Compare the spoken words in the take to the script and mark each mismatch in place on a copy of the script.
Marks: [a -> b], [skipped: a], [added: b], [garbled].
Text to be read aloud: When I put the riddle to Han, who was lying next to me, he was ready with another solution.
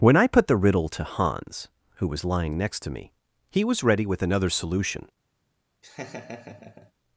When I put the riddle to [Han, -> Hans] who was lying next to me, he was ready with another solution.